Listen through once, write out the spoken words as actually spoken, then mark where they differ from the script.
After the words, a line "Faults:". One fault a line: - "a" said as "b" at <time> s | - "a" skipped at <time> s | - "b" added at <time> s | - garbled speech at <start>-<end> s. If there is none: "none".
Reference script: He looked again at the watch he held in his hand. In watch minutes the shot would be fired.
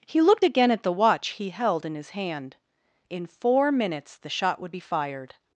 He looked again at the watch he held in his hand. In four minutes the shot would be fired.
Faults:
- "watch" said as "four" at 3.3 s